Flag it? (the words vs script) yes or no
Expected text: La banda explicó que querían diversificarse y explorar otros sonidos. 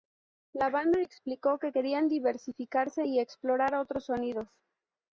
no